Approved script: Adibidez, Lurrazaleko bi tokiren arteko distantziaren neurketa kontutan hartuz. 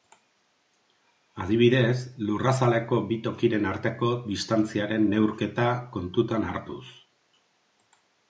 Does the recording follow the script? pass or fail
pass